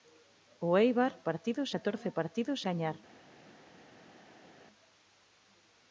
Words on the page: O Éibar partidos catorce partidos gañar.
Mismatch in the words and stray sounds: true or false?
false